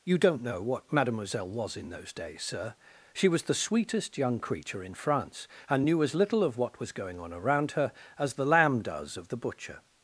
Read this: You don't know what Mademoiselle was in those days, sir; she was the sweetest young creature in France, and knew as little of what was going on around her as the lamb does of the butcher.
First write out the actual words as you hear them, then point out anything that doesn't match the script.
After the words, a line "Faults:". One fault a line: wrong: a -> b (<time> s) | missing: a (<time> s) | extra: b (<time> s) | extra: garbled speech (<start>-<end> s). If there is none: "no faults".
You don't know what Mademoiselle was in those days, sir; she was the sweetest young creature in France, and knew as little of what was going on around her as the lamb does of the butcher.
Faults:
no faults